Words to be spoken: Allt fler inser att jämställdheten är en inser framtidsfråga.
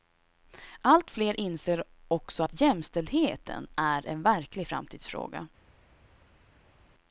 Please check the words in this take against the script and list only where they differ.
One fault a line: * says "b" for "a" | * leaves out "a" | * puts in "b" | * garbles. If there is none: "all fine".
* puts in "också"
* says "verklig" for "inser"